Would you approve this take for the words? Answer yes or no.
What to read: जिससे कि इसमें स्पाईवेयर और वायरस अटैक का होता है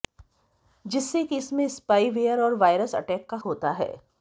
yes